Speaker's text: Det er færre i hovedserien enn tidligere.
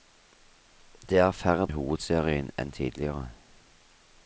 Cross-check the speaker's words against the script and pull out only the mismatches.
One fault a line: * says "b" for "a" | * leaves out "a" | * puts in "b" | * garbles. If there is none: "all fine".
all fine